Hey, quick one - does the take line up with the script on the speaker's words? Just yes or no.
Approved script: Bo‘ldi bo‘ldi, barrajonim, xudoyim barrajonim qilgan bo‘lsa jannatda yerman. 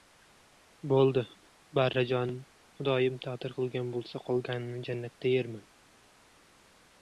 no